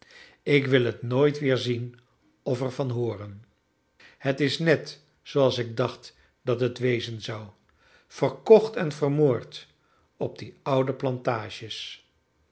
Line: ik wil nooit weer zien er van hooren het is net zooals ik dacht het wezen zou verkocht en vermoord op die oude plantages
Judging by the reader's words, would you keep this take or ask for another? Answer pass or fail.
fail